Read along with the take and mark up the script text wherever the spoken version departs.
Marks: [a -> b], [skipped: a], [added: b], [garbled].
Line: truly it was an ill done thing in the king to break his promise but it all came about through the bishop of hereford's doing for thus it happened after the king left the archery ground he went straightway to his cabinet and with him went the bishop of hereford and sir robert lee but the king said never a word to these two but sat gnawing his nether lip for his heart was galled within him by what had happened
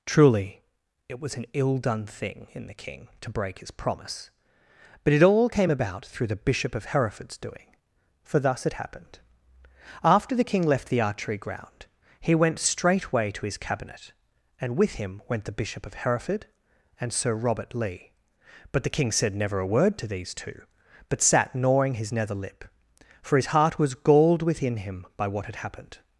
truly it was an ill done thing in the king to break his promise but it all came about through the bishop of hereford's doing for thus it happened after the king left the archery ground he went straightway to his cabinet and with him went the bishop of hereford and sir robert lee but the king said never a word to these two but sat gnawing his nether lip for his heart was galled within him by what had happened